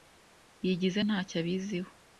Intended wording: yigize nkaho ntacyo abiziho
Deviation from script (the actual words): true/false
true